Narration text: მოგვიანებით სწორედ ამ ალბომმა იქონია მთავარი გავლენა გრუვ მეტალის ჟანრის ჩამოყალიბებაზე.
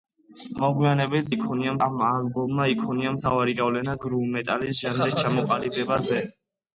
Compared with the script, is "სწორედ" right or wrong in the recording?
wrong